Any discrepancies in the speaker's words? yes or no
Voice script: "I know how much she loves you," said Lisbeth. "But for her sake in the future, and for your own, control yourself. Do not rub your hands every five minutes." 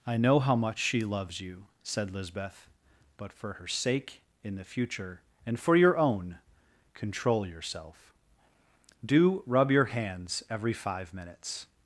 yes